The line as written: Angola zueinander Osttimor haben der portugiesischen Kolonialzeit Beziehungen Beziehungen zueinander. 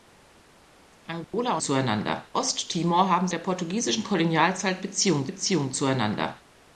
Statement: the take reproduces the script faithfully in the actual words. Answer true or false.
true